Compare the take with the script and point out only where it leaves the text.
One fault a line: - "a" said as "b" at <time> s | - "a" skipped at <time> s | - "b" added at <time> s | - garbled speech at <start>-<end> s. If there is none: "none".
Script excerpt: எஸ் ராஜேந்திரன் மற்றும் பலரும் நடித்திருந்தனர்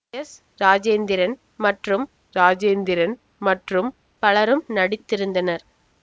- "ராஜேந்திரன் மற்றும்" added at 2.4 s